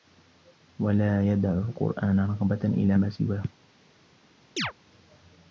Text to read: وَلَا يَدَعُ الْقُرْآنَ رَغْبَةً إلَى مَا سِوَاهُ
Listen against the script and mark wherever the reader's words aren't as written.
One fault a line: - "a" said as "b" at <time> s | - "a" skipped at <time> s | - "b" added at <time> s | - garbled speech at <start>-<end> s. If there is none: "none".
none